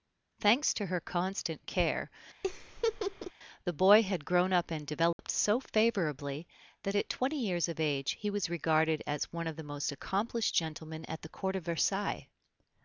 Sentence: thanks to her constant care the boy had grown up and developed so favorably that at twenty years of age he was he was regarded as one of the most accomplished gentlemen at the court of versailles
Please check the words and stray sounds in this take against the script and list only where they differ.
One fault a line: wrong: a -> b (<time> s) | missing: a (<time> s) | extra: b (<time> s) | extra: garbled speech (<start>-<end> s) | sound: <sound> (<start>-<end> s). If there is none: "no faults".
sound: laugh (2.4-3.3 s)
sound: dropout (5.1-5.2 s)
missing: he was (8.5 s)